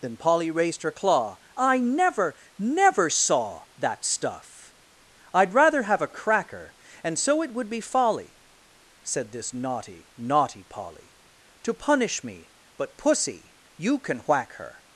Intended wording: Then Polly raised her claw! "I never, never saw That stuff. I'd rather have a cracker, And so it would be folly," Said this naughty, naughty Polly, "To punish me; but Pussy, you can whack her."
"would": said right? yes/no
yes